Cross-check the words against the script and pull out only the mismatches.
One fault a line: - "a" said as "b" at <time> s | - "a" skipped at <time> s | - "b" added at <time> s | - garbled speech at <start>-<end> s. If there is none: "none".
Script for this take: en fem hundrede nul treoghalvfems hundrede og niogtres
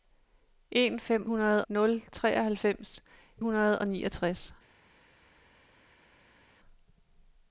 none